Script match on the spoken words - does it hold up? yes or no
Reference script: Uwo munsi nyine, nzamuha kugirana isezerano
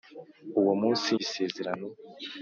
no